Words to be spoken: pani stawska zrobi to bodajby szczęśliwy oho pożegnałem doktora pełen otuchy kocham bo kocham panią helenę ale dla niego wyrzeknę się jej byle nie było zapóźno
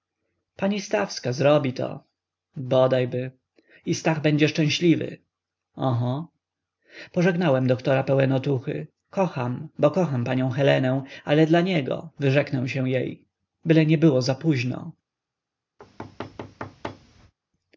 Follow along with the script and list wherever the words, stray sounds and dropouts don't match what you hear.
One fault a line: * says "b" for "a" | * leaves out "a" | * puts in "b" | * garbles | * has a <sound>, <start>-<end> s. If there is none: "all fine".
* puts in "i stach będzie"
* has a thud, 15.8-17.3 s